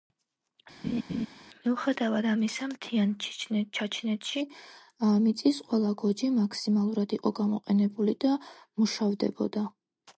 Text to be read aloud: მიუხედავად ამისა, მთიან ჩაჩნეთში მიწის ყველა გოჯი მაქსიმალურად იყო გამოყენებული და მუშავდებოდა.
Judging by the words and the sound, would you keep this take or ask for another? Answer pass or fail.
fail